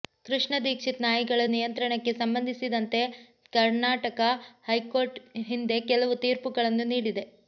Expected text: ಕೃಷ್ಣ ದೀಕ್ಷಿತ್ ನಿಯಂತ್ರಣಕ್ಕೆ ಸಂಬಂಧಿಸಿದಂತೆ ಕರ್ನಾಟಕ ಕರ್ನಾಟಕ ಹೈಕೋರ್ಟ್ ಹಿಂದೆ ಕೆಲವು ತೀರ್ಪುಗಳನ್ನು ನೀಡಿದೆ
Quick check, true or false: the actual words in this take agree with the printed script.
false